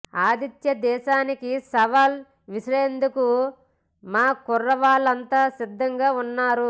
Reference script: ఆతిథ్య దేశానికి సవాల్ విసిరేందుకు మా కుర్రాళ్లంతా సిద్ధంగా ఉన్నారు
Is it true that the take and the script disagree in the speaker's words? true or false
false